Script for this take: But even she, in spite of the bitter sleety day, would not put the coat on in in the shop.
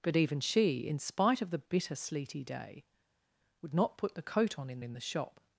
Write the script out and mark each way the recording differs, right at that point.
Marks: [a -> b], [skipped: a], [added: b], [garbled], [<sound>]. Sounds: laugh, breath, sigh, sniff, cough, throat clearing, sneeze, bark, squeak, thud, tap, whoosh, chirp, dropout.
But even she, in spite of the bitter sleety day, would not put the coat on in in the shop.